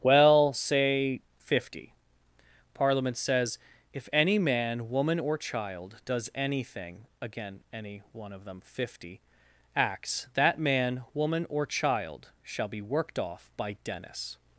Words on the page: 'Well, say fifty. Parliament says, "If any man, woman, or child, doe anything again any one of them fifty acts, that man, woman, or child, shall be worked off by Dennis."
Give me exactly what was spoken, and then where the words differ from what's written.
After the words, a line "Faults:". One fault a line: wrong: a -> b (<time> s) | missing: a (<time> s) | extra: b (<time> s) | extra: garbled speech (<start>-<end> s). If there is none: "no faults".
'Well, say fifty. Parliament says, "If any man, woman, or child, does anything again any one of them fifty acts, that man, woman, or child, shall be worked off by Dennis."
Faults:
wrong: doe -> does (6.1 s)